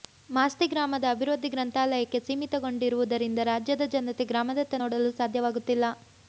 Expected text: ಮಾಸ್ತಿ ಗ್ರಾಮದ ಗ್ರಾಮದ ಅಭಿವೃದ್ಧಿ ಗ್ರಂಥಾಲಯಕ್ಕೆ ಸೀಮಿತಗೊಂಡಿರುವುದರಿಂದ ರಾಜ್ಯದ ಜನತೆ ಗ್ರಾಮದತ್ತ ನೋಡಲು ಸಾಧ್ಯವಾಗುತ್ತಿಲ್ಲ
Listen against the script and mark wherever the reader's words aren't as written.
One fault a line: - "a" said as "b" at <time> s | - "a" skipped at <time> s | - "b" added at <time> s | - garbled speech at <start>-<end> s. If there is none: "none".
- "ಗ್ರಾಮದ" skipped at 1.1 s